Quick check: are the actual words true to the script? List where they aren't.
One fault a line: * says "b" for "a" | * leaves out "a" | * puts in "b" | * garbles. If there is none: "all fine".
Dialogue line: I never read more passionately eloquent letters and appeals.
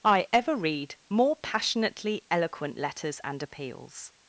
* says "ever" for "never"